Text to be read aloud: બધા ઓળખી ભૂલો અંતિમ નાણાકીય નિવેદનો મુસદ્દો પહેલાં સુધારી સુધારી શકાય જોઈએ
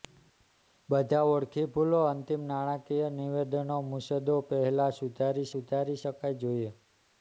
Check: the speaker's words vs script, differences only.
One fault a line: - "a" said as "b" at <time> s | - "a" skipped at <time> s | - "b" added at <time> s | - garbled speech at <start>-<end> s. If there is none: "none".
none